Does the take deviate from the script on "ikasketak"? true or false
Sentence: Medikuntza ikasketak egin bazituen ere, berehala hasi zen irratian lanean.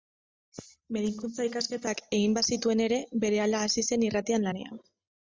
false